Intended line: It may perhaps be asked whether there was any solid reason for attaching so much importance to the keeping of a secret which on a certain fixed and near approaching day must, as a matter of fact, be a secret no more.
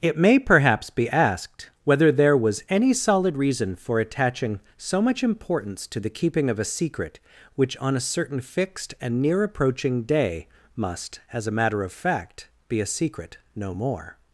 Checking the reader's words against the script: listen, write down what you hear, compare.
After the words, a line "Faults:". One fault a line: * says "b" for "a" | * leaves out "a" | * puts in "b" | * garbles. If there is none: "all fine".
It may perhaps be asked whether there was any solid reason for attaching so much importance to the keeping of a secret which on a certain fixed and near approaching day must, as a matter of fact, be a secret no more.
Faults:
all fine